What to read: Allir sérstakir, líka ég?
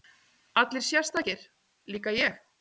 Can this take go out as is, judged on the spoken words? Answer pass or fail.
pass